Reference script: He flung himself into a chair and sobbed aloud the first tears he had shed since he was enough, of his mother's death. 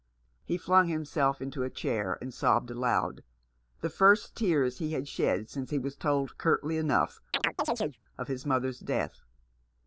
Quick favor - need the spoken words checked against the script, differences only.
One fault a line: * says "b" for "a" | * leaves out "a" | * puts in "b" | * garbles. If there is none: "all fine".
* puts in "told curtly"